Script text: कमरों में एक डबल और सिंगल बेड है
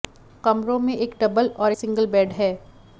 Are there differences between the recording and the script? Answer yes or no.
no